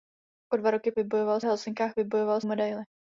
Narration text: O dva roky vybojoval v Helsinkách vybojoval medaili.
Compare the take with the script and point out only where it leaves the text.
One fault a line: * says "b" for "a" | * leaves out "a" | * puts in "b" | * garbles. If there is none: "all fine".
all fine